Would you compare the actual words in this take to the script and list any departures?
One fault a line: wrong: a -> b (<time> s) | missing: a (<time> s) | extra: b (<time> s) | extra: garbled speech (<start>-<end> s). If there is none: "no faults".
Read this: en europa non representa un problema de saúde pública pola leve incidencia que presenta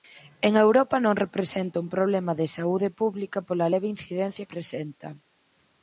missing: que (4.5 s)